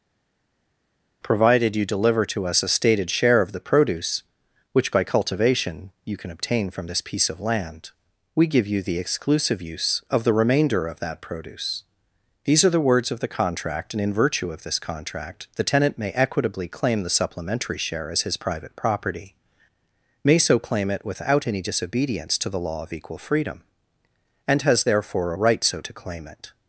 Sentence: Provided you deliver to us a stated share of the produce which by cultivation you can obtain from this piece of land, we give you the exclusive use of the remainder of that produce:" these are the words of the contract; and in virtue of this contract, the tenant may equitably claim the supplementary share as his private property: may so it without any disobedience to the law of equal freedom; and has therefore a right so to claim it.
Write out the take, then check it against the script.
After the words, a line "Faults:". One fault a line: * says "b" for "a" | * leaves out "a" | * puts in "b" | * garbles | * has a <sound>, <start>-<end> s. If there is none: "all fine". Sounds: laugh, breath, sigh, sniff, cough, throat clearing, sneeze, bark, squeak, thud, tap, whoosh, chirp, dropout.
Provided you deliver to us a stated share of the produce which by cultivation you can obtain from this piece of land, we give you the exclusive use of the remainder of that produce:" these are the words of the contract; and in virtue of this contract, the tenant may equitably claim the supplementary share as his private property: may so claim it without any disobedience to the law of equal freedom; and has therefore a right so to claim it.
Faults:
* puts in "claim"